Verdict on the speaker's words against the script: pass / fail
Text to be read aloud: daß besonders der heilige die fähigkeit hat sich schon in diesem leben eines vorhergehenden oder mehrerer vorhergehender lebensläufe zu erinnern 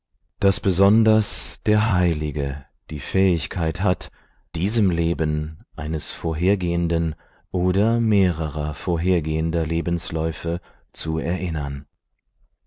fail